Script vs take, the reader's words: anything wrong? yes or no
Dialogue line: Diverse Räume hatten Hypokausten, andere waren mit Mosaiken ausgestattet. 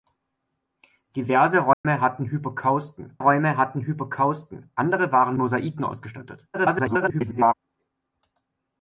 yes